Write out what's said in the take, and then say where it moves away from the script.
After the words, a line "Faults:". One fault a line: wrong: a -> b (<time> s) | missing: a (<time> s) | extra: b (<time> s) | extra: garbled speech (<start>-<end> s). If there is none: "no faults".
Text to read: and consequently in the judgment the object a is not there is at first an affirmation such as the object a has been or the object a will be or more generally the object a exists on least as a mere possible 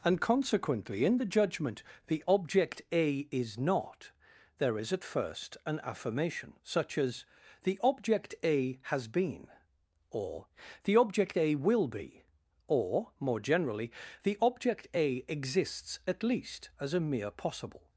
and consequently in the judgment the object a is not there is at first an affirmation such as the object a has been or the object a will be or more generally the object a exists at least as a mere possible
Faults:
wrong: on -> at (16.1 s)